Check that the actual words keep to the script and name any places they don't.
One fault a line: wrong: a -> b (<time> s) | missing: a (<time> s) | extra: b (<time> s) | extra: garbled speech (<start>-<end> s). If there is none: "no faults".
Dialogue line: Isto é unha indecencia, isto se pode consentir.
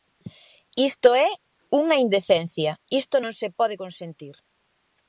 extra: non (3.2 s)